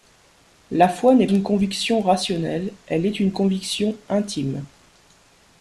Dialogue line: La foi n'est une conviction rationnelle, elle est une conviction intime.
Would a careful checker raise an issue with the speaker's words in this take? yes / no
no